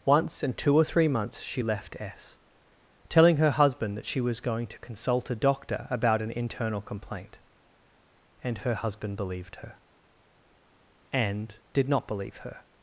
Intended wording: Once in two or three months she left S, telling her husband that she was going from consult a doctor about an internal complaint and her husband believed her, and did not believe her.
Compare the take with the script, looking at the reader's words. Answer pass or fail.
fail